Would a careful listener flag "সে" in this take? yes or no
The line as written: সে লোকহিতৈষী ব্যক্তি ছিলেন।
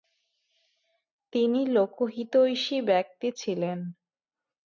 yes